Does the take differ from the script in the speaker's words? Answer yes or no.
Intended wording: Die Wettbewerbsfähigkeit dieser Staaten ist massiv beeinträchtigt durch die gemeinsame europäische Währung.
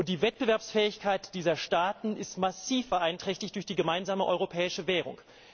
no